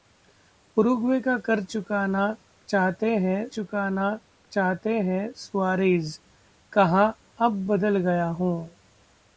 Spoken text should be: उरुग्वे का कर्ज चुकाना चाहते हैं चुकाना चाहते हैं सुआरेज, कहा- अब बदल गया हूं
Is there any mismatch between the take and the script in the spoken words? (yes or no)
no